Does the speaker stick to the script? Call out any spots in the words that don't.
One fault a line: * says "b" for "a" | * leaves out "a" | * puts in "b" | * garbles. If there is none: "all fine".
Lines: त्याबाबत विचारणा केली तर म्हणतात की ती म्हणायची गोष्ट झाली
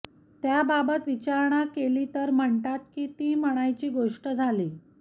all fine